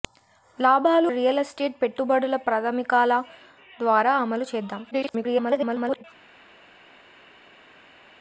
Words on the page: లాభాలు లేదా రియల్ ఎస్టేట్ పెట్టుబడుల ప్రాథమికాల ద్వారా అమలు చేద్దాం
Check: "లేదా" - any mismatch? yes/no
yes